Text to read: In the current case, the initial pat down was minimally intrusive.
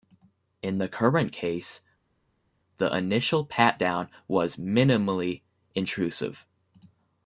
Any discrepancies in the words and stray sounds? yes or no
no